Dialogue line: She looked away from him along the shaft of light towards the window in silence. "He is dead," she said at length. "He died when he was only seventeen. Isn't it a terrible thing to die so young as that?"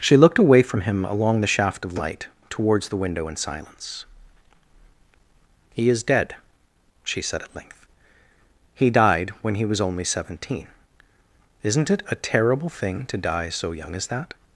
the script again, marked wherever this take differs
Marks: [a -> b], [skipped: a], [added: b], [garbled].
She looked away from him along the shaft of light towards the window in silence. "He is dead," she said at length. "He died when he was only seventeen. Isn't it a terrible thing to die so young as that?"